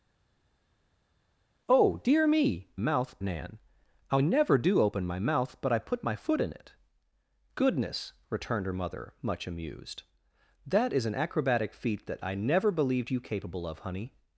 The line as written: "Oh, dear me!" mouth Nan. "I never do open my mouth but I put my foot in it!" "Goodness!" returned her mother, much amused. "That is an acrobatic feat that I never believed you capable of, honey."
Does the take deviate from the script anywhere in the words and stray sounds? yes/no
no